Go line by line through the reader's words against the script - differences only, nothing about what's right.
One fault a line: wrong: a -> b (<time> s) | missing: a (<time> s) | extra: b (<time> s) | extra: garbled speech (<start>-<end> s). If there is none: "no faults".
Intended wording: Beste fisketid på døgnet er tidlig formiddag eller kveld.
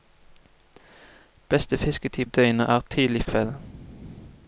missing: på (2.2 s)
missing: formiddag eller (3.2 s)